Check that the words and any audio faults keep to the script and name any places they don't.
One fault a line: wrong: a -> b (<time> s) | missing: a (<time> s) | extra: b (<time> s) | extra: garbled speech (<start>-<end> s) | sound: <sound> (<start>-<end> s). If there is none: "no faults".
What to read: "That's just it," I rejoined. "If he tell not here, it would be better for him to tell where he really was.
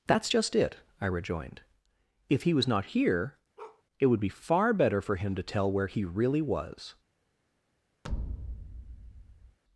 wrong: tell -> was (2.5 s)
sound: bark (3.6-3.8 s)
extra: far (4.3 s)
sound: thud (8.0-9.6 s)